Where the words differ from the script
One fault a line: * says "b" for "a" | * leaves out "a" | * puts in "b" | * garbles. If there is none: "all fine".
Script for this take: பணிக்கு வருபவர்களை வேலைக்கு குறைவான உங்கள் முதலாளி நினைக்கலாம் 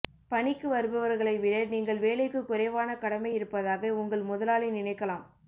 * puts in "விட நீங்கள்"
* puts in "கடமை இருப்பதாக"